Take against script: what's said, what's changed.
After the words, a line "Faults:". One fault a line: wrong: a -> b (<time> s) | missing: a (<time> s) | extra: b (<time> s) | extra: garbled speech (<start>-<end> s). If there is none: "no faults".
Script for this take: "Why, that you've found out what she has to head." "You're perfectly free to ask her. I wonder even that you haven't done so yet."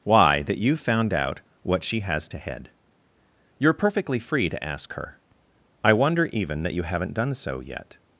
"Why, that you've found out what she has to head." "You're perfectly free to ask her. I wonder even that you haven't done so yet."
Faults:
no faults